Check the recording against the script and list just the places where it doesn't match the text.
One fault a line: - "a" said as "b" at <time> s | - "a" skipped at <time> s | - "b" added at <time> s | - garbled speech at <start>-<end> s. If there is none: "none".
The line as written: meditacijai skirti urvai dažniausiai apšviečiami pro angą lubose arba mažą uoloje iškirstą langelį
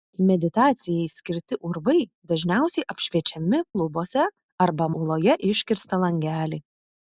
- "pro angą" skipped at 3.6 s
- "mažą" skipped at 4.9 s